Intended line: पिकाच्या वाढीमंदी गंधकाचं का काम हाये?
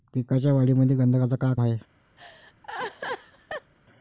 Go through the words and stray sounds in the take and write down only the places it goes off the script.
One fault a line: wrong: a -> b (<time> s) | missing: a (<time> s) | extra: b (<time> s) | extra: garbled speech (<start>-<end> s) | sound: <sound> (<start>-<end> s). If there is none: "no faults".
missing: काम (1.5 s)
sound: laugh (2.2-3.7 s)